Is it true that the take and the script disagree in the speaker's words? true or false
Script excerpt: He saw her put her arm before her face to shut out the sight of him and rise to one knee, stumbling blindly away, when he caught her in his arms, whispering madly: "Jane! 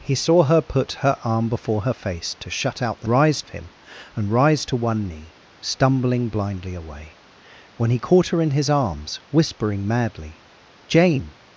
true